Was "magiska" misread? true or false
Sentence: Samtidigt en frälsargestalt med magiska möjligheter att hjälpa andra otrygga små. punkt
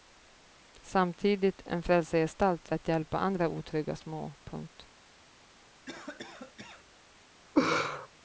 true